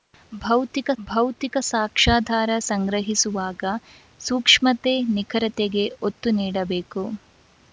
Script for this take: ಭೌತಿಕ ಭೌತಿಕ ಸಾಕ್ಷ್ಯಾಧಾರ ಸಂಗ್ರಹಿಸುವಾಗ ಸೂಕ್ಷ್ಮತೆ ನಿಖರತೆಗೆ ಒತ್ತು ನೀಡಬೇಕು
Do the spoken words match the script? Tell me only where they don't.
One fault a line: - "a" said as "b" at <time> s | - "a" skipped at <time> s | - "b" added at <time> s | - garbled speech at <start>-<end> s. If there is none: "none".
none